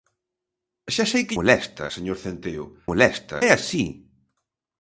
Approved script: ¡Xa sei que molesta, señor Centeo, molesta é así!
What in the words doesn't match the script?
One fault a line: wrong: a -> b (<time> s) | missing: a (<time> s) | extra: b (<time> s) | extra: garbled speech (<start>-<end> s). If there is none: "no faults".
no faults